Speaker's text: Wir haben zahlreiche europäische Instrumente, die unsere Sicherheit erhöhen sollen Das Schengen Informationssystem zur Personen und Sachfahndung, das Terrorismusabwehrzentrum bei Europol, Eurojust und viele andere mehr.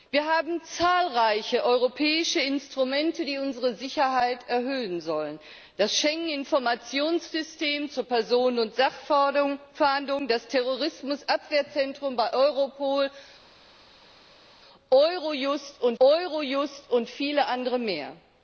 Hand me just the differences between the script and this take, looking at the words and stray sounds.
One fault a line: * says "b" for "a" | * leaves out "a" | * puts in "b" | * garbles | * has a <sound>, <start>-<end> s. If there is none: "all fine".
* puts in "Eurojust und"